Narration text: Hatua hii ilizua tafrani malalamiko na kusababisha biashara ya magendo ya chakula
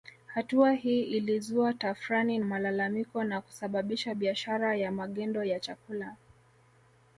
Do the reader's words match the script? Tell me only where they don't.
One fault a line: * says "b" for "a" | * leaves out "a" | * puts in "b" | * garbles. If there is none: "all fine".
all fine